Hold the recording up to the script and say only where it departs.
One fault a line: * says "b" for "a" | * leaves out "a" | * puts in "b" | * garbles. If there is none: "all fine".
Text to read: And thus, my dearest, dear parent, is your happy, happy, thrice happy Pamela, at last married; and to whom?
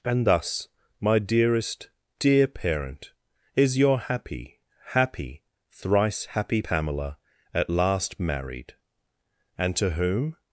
all fine